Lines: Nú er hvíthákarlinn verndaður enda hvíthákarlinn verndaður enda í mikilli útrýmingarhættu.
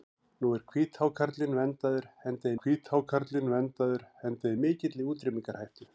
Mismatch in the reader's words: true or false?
false